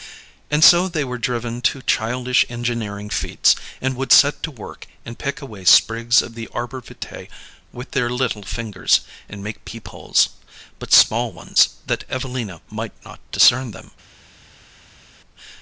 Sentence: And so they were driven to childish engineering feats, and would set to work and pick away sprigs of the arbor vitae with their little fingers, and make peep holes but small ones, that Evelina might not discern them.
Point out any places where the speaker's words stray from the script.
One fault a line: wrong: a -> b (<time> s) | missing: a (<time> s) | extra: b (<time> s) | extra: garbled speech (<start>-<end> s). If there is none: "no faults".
no faults